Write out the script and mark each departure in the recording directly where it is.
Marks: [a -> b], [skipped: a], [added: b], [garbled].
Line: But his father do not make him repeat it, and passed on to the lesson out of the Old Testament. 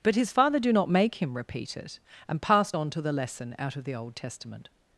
But his father do not make him repeat it, and passed on to the lesson out of the Old Testament.